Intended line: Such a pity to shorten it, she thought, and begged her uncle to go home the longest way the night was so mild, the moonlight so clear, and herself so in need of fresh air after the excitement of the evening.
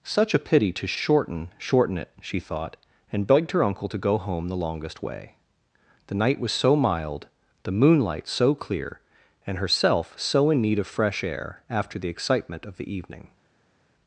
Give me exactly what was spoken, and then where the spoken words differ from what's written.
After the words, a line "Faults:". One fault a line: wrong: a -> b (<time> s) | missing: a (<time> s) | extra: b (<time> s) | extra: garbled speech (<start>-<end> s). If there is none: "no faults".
Such a pity to shorten shorten it, she thought, and begged her uncle to go home the longest way the night was so mild, the moonlight so clear, and herself so in need of fresh air after the excitement of the evening.
Faults:
extra: shorten (1.6 s)